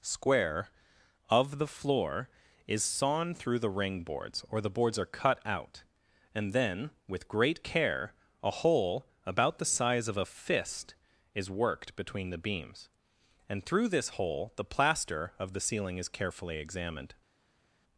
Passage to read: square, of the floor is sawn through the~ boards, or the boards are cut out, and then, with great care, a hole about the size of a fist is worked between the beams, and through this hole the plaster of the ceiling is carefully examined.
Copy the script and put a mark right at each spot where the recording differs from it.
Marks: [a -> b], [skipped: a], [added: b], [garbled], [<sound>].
square, of the floor is sawn through the~ [added: ring] boards, or the boards are cut out, and then, with great care, a hole about the size of a fist is worked between the beams, and through this hole the plaster of the ceiling is carefully examined.